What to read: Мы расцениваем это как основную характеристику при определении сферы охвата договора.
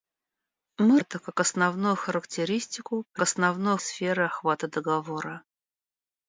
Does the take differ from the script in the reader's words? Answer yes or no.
yes